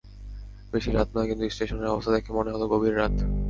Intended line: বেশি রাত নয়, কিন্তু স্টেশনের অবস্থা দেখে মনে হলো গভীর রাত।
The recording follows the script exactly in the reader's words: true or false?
true